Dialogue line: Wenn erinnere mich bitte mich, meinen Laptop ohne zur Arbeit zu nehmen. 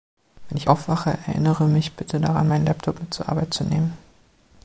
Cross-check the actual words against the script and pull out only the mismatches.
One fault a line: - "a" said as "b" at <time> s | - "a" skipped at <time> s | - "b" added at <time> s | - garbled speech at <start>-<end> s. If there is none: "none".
- "ich aufwache" added at 0.6 s
- "mich" said as "daran" at 2.2 s
- "ohne" said as "mit" at 3.0 s